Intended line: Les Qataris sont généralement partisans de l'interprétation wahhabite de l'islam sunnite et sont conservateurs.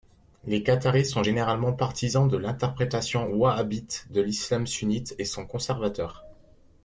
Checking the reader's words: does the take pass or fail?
pass